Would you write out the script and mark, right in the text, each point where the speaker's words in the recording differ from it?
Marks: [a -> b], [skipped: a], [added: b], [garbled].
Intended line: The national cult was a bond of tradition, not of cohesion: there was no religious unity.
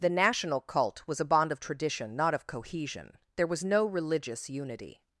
The national cult was a bond of tradition, not of cohesion: there was no religious unity.